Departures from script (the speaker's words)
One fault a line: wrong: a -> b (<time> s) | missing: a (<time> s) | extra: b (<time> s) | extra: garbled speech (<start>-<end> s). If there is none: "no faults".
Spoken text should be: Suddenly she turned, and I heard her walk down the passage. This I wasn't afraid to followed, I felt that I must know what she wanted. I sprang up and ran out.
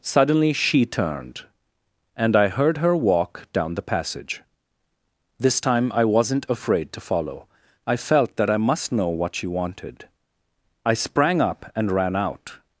extra: time (5.6 s)
wrong: followed -> follow (7.0 s)